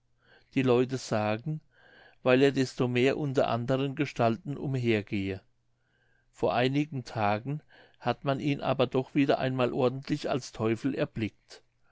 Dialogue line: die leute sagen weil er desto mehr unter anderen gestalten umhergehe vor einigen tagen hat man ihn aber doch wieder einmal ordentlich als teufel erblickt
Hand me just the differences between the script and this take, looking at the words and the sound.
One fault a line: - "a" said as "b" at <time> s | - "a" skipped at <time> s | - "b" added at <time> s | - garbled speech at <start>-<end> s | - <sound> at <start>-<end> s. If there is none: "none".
none